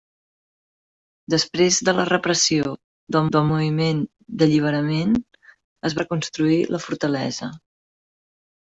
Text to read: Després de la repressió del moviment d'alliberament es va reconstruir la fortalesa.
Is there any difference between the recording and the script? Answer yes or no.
yes